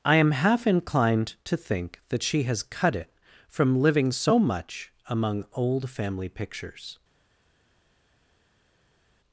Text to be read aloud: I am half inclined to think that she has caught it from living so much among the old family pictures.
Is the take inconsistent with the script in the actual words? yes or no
yes